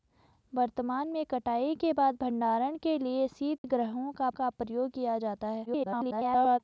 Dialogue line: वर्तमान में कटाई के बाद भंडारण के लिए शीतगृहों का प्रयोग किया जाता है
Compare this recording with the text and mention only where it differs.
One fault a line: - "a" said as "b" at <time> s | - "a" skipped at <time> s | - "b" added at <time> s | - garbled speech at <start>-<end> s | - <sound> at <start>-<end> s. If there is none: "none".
- dropout at 3.6-3.6 s
- "का" added at 4.3 s
- garbled speech at 5.7-6.6 s